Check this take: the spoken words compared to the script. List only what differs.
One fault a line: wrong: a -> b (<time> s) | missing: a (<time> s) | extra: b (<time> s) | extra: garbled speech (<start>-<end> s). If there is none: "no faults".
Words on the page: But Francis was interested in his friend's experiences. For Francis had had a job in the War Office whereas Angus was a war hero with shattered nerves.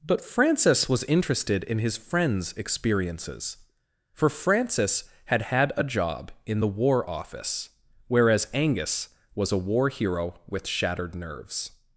no faults